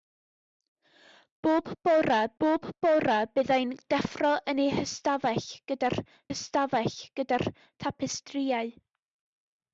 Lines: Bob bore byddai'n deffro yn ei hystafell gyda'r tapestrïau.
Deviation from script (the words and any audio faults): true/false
true